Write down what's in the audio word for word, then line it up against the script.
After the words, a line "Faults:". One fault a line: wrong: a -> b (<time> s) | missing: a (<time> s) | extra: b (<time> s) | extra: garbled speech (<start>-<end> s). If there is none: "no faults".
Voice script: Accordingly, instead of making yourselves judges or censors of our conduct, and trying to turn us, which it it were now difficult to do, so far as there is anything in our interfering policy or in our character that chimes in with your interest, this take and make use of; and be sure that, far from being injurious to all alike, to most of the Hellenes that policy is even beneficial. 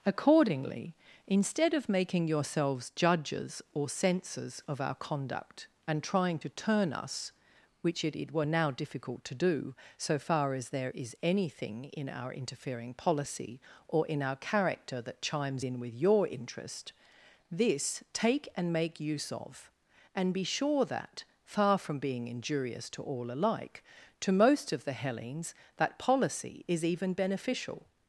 Accordingly, instead of making yourselves judges or censors of our conduct, and trying to turn us, which it it were now difficult to do, so far as there is anything in our interfering policy or in our character that chimes in with your interest, this take and make use of; and be sure that, far from being injurious to all alike, to most of the Hellenes that policy is even beneficial.
Faults:
no faults